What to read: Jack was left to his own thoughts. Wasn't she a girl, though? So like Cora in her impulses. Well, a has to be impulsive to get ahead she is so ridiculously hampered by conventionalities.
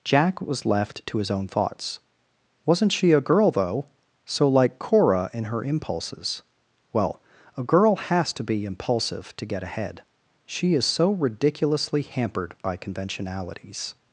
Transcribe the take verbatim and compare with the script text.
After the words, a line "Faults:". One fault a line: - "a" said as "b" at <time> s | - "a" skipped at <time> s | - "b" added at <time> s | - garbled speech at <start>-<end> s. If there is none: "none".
Jack was left to his own thoughts. Wasn't she a girl, though? So like Cora in her impulses. Well, a girl has to be impulsive to get ahead she is so ridiculously hampered by conventionalities.
Faults:
- "girl" added at 7.6 s